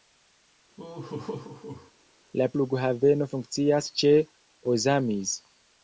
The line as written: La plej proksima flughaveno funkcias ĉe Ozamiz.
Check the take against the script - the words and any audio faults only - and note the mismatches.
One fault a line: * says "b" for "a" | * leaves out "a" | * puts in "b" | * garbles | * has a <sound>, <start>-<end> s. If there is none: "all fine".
* has a laugh, 0.8-1.9 s
* leaves out "plej proksima"